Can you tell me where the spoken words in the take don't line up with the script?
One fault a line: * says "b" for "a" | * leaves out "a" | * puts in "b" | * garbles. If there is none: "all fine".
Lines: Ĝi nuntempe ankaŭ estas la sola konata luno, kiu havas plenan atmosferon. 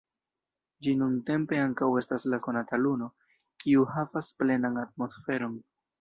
* leaves out "sola"